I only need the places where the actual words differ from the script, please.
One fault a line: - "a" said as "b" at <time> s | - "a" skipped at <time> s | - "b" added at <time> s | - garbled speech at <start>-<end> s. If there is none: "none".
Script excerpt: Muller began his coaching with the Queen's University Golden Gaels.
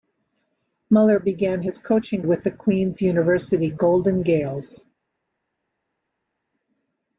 none